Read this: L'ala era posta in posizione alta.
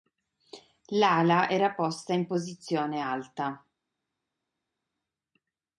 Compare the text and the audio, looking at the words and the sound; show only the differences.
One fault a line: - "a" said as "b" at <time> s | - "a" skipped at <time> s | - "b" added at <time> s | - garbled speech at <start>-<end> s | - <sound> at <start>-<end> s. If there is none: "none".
none